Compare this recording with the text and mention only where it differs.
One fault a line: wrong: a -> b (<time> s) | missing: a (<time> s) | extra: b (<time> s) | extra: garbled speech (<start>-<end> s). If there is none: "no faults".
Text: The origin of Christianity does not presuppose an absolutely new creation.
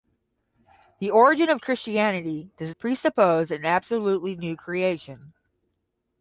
missing: not (2.8 s)